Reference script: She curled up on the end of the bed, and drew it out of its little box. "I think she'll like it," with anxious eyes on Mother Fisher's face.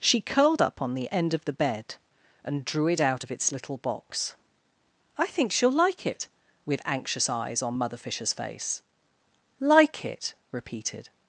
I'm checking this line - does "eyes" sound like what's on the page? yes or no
yes